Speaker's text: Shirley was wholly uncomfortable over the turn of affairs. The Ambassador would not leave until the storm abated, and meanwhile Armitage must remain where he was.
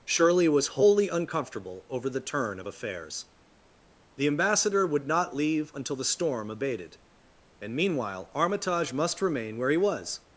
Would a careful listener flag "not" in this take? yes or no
no